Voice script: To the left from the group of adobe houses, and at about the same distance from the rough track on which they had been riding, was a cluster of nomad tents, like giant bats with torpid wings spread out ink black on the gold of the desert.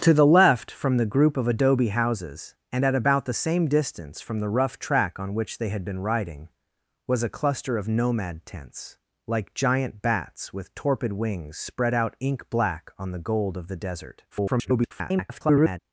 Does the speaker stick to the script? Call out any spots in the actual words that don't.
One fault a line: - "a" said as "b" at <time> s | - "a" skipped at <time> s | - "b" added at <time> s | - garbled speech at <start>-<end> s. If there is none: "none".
- garbled speech at 14.3-15.8 s